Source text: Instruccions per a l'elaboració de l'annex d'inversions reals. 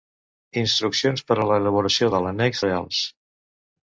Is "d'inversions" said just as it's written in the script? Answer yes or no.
no